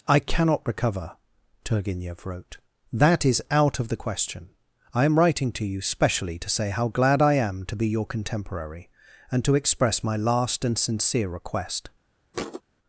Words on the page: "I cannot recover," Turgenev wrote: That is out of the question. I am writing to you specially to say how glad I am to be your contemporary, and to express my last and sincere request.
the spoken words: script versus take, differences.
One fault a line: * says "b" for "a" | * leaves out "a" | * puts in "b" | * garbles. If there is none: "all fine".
all fine